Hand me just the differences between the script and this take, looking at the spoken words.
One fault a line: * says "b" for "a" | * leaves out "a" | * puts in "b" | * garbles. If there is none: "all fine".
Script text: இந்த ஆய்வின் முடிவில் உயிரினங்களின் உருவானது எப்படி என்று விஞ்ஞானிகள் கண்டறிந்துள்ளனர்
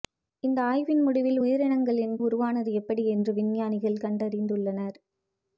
all fine